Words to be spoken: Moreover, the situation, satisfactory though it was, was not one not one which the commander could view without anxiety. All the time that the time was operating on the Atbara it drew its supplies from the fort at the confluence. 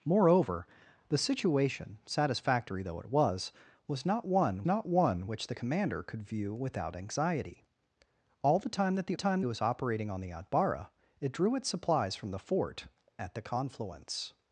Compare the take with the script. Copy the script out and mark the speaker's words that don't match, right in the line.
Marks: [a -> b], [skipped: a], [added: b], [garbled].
Moreover, the situation, satisfactory though it was, was not one not one which the commander could view without anxiety. All the time that the time was operating on the Atbara it drew its supplies from the fort at the confluence.